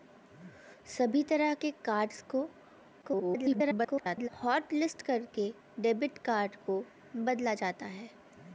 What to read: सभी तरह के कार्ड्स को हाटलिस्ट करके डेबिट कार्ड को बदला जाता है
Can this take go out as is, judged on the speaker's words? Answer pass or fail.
fail